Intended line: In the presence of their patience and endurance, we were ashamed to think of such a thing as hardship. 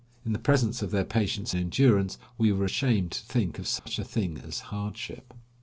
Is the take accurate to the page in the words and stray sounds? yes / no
no